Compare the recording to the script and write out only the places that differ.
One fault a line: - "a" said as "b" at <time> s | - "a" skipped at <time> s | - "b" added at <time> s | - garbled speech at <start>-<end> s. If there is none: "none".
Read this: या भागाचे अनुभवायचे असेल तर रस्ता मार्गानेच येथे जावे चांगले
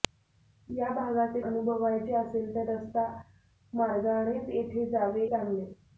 none